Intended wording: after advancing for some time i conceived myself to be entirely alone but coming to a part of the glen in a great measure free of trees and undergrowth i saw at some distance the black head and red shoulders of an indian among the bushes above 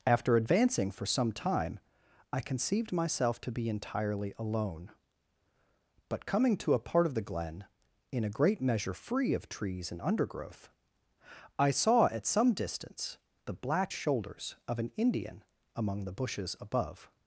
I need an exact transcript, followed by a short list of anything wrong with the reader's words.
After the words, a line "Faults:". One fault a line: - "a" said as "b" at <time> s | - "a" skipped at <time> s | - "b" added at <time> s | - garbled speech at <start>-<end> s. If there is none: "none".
after advancing for some time i conceived myself to be entirely alone but coming to a part of the glen in a great measure free of trees and undergrowth i saw at some distance the black shoulders of an indian among the bushes above
Faults:
- "head and red" skipped at 13.9 s